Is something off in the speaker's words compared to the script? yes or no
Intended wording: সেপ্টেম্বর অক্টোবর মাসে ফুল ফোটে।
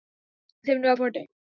yes